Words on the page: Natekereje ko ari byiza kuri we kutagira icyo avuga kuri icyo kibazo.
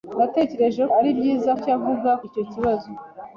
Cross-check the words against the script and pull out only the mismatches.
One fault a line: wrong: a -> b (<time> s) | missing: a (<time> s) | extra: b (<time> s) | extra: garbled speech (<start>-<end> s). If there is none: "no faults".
missing: ko (0.8 s)
missing: kuri we kutagira (1.5 s)
missing: kuri (2.1 s)